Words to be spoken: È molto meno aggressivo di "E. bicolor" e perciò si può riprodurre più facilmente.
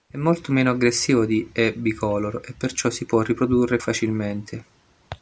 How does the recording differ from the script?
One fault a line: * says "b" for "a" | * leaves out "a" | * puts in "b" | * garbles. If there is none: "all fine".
* leaves out "più"